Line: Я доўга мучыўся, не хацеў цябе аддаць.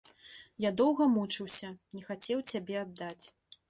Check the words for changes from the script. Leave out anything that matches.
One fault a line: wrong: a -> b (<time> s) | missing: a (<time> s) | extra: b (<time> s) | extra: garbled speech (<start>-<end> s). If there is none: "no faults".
no faults